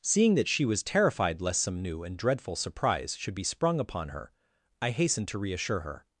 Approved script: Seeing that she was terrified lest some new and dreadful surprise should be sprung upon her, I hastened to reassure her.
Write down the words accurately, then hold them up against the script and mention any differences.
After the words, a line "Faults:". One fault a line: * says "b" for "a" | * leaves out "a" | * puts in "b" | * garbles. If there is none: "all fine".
Seeing that she was terrified lest some new and dreadful surprise should be sprung upon her, I hastened to reassure her.
Faults:
all fine